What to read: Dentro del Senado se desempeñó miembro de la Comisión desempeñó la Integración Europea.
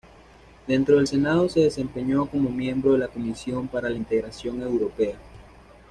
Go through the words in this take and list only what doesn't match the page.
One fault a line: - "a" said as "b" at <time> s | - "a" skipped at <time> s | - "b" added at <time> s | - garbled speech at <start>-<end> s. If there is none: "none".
- "como" added at 2.3 s
- "desempeñó" said as "para" at 3.7 s